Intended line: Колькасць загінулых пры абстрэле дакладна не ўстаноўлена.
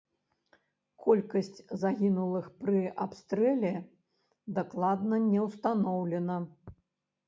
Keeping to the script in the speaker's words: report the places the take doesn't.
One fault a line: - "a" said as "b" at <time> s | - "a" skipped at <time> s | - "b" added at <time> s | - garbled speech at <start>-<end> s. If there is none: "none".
none